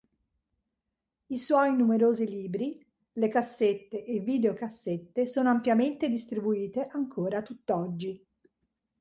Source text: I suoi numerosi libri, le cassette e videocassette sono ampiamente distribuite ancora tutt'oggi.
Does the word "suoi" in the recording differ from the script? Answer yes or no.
no